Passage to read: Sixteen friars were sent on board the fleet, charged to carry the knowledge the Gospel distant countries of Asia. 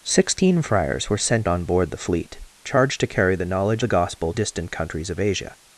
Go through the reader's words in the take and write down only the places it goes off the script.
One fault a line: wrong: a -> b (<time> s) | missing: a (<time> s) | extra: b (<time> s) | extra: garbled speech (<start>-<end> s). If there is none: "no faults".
no faults